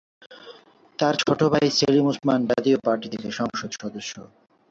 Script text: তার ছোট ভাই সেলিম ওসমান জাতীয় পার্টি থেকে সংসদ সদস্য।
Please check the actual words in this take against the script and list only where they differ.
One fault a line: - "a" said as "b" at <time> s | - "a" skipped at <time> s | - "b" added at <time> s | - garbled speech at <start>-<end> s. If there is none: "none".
none